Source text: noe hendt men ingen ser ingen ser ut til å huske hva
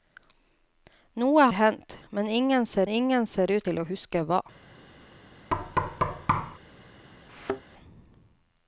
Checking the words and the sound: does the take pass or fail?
fail